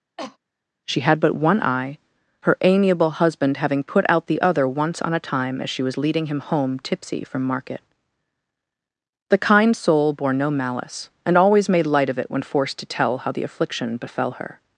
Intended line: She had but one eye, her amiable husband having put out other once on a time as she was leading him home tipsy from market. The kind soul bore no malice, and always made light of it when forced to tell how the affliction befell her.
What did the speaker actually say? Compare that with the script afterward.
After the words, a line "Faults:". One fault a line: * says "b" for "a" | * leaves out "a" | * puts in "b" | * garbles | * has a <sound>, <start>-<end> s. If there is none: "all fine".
She had but one eye, her amiable husband having put out the other once on a time as she was leading him home tipsy from market. The kind soul bore no malice, and always made light of it when forced to tell how the affliction befell her.
Faults:
* has a cough, 0.2-0.4 s
* puts in "the"